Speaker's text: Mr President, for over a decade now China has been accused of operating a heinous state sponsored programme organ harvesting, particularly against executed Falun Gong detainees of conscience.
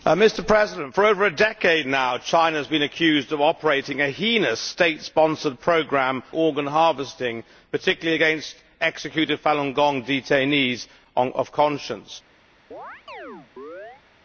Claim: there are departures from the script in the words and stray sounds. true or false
true